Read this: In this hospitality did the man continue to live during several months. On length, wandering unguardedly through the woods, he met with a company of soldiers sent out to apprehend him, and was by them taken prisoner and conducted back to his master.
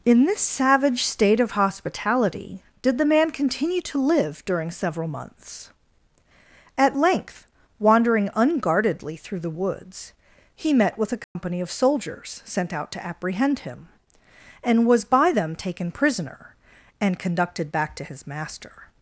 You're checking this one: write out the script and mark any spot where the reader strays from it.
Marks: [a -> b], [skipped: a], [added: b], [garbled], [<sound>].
In this [added: savage state of] hospitality did the man continue to live during several months. [On -> At] length, wandering unguardedly through the woods, he met with a company [dropout] of soldiers sent out to apprehend him, and was by them taken prisoner and conducted back to his master.